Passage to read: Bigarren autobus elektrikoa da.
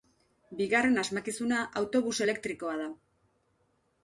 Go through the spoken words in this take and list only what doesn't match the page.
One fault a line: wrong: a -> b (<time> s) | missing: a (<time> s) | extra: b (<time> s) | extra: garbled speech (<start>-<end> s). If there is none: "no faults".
extra: asmakizuna (1.0 s)